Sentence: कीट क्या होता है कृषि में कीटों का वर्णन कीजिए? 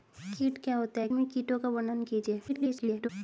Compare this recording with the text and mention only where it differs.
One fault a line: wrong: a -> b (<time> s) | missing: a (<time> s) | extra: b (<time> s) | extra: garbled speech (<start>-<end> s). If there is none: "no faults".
missing: कृषि (1.1 s)
extra: garbled speech (2.5-3.1 s)